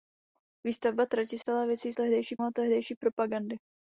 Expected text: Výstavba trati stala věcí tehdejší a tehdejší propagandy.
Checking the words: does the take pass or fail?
pass